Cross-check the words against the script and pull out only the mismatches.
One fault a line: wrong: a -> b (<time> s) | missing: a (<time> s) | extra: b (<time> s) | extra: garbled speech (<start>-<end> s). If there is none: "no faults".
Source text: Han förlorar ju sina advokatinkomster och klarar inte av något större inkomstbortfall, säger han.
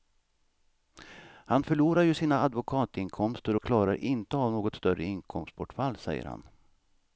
no faults